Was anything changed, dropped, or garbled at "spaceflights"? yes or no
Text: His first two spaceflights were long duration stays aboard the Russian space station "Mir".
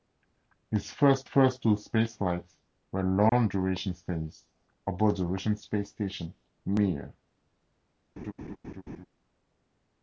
no